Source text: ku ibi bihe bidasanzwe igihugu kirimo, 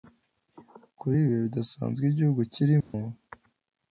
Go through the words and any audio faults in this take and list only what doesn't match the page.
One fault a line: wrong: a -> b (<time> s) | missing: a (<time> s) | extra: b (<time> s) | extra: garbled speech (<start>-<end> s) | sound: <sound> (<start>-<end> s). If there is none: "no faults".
wrong: ku -> kuri (1.0 s)
sound: dropout (2.8-2.9 s)